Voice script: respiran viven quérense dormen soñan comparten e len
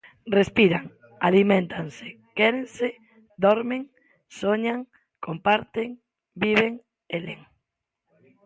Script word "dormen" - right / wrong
right